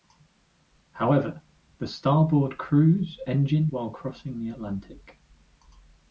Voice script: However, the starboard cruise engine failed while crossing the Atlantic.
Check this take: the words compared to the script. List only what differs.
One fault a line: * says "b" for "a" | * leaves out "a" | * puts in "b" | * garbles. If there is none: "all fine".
* leaves out "failed"